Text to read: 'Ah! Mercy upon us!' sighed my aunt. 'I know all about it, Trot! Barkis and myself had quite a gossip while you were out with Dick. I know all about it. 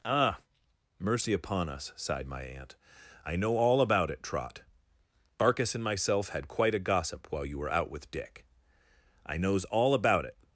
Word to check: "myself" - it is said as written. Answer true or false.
true